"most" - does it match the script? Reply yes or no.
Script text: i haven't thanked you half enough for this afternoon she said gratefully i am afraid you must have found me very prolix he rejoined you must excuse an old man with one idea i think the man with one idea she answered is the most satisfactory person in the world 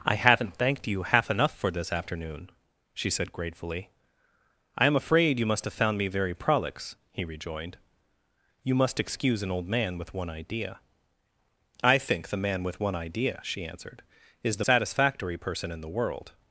no